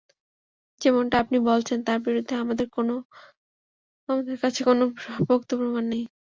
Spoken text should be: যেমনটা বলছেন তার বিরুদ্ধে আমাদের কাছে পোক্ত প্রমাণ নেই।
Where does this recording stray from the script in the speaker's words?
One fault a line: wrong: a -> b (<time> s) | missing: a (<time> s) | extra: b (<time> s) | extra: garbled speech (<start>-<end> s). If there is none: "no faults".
extra: আপনি (1.2 s)
extra: কোনো (4.7 s)